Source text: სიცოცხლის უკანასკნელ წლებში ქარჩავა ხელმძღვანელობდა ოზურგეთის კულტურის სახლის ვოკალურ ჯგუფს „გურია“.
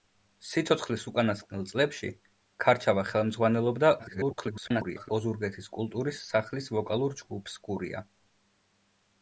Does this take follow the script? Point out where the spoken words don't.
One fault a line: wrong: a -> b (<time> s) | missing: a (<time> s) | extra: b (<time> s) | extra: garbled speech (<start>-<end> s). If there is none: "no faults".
extra: garbled speech (4.0-5.1 s)